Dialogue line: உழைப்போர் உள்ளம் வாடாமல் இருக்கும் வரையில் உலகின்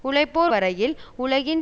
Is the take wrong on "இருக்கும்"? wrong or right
wrong